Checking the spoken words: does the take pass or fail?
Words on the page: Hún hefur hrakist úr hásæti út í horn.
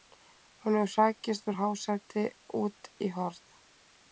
pass